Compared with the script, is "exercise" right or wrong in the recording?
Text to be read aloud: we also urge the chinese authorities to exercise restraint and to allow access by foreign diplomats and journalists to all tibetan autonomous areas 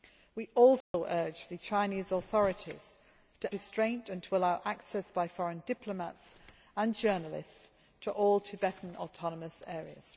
wrong